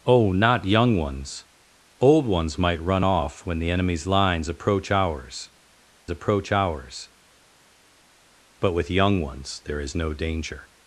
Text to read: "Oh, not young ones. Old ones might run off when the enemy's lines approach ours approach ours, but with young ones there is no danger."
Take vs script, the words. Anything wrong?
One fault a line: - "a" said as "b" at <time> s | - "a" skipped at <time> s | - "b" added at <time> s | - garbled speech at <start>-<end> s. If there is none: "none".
none